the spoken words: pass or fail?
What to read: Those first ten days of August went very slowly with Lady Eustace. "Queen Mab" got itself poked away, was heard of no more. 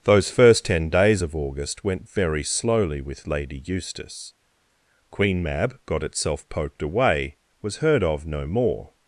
pass